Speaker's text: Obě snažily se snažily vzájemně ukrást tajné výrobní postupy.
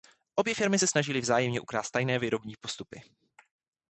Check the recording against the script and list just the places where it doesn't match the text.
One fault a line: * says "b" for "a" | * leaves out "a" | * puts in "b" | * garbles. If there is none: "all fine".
* says "firmy" for "snažily"